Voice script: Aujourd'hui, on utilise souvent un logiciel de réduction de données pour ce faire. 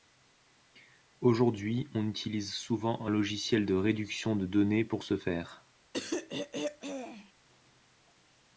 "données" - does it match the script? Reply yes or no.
yes